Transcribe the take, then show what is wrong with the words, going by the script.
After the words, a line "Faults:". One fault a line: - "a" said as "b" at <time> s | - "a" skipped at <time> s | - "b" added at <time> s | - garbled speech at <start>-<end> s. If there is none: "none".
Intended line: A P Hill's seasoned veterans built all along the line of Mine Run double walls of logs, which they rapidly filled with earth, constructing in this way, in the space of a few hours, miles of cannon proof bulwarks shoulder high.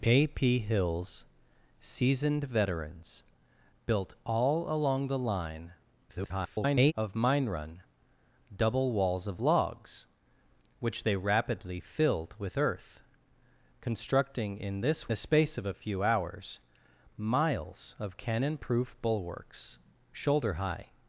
A P Hill's seasoned veterans built all along the line [garbled] of Mine Run double walls of logs, which they rapidly filled with earth, constructing in this the space of a few hours, miles of cannon proof bulwarks shoulder high.
Faults:
- garbled speech at 6.1-6.9 s
- "way in" skipped at 15.1 s